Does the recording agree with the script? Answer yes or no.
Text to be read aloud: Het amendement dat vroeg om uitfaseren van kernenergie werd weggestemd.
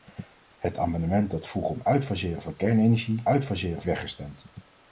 no